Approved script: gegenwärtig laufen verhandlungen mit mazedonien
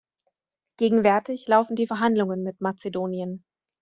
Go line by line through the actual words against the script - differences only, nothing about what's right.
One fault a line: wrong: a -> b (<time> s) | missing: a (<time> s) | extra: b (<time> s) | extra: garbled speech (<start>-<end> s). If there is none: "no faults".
extra: die (1.8 s)